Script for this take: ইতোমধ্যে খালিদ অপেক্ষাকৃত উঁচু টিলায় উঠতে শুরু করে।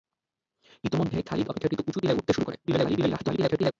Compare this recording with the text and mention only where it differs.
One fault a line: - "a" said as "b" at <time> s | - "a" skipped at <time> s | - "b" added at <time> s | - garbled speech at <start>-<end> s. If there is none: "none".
- garbled speech at 2.6-3.7 s